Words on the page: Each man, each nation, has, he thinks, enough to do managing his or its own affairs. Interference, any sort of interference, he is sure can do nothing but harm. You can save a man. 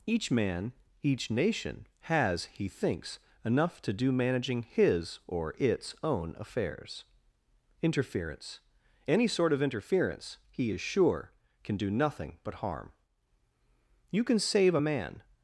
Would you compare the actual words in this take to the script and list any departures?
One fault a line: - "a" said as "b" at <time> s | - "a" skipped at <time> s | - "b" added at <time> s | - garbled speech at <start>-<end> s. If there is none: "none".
none